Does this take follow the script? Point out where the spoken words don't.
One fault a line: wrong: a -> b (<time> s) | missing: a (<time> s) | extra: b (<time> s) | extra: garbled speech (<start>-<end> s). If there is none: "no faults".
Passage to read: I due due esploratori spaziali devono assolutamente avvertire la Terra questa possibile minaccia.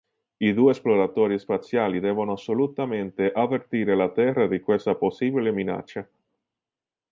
missing: due (0.7 s)
extra: di (4.5 s)